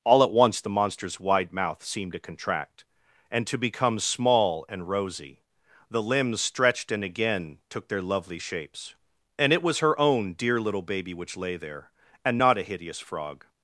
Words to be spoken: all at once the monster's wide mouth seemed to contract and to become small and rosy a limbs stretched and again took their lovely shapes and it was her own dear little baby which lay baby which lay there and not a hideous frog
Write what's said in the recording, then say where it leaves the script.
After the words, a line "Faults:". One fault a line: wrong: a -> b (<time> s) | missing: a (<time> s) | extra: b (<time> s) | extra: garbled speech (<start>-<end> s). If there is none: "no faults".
all at once the monster's wide mouth seemed to contract and to become small and rosy the limbs stretched and again took their lovely shapes and it was her own dear little baby which lay there and not a hideous frog
Faults:
wrong: a -> the (5.9 s)
missing: baby which lay (11.6 s)